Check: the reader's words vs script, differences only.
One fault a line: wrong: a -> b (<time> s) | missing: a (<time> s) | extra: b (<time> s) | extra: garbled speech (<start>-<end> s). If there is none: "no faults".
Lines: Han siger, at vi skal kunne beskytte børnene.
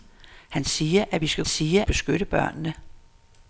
wrong: kunne -> siger (1.4 s)